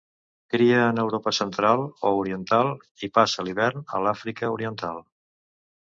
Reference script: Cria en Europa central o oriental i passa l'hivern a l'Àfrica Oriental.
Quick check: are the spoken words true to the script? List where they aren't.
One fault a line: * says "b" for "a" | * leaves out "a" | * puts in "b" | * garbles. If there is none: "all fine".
all fine